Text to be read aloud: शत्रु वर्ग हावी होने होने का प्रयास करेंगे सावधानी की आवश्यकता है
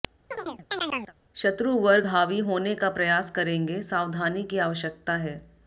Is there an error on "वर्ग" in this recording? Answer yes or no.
no